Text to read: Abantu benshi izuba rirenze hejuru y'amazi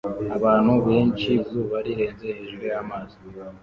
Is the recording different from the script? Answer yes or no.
no